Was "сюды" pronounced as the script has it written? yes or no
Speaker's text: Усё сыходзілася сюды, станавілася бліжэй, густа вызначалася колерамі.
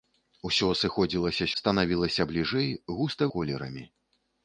no